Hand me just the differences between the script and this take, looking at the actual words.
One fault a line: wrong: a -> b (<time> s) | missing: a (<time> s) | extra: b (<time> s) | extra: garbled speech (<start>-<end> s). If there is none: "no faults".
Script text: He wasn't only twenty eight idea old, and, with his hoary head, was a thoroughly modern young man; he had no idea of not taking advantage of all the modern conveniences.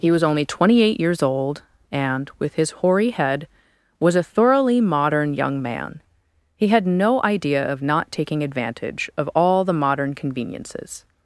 wrong: wasn't -> was (0.1 s)
wrong: idea -> years (1.0 s)